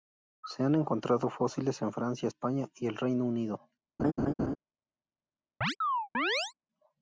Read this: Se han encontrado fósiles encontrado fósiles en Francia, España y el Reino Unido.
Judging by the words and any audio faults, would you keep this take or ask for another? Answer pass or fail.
fail